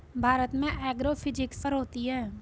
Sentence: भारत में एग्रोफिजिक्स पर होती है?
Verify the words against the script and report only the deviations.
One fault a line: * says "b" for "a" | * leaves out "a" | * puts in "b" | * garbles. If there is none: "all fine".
all fine